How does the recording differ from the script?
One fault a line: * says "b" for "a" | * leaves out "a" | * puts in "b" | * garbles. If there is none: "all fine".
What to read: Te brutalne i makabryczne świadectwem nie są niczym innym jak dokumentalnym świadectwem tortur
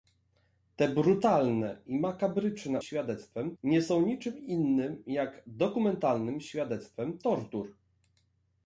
all fine